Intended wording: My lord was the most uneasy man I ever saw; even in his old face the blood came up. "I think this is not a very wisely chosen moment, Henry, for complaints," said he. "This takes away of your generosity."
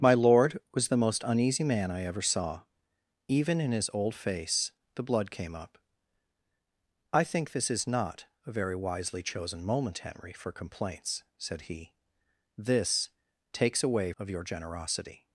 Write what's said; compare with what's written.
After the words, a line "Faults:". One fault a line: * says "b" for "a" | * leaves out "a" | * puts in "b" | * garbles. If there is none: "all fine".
My lord was the most uneasy man I ever saw; even in his old face the blood came up. "I think this is not a very wisely chosen moment, Henry, for complaints," said he. "This takes away of your generosity."
Faults:
all fine